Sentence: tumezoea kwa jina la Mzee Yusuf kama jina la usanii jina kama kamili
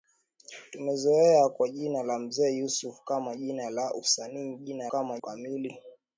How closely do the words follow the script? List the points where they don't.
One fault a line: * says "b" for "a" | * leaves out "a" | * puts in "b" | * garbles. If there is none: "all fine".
all fine